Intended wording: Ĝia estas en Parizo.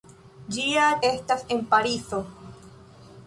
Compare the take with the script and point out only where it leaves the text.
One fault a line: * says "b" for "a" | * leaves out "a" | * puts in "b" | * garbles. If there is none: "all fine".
all fine